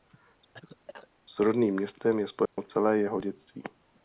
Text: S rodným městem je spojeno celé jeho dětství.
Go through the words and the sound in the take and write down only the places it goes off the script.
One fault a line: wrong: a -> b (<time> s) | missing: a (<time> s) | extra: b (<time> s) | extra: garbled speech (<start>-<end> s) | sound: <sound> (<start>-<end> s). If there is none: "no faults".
sound: cough (0.5-1.1 s)
sound: dropout (2.5-2.6 s)